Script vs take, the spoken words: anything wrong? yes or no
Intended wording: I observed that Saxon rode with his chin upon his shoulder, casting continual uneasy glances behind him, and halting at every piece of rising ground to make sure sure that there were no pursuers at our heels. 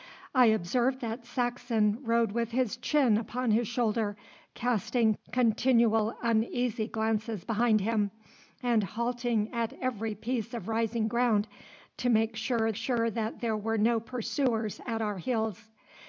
no